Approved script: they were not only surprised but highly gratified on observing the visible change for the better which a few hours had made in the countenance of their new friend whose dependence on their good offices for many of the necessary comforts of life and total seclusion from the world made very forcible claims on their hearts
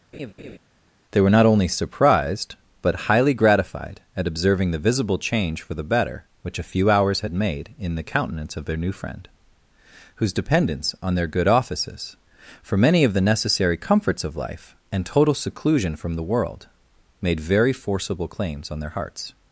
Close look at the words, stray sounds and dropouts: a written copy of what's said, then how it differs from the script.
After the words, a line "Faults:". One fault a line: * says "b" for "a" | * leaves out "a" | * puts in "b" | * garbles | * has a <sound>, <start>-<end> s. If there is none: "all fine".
they were not only surprised but highly gratified at observing the visible change for the better which a few hours had made in the countenance of their new friend whose dependence on their good offices for many of the necessary comforts of life and total seclusion from the world made very forcible claims on their hearts
Faults:
* has a laugh, 0.1-0.6 s
* says "at" for "on"